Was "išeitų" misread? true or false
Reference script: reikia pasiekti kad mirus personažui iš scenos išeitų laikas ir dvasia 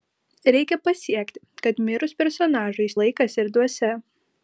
true